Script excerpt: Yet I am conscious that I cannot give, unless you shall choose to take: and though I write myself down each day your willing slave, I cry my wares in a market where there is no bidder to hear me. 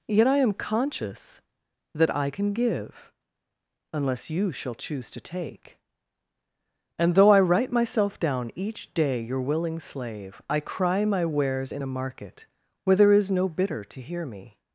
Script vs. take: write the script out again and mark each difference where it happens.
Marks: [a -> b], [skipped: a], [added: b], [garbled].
Yet I am conscious that I [cannot -> can] give, unless you shall choose to take: and though I write myself down each day your willing slave, I cry my wares in a market where there is no bidder to hear me.